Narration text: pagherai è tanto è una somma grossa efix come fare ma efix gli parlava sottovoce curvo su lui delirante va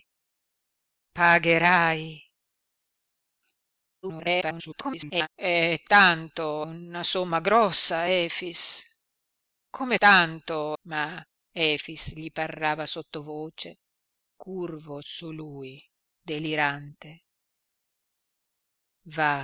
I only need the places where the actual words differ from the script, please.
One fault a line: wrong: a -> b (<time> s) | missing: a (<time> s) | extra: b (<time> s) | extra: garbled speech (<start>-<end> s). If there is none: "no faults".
extra: garbled speech (4.0-5.3 s)
missing: è (6.7 s)
wrong: fare -> tanto (10.0 s)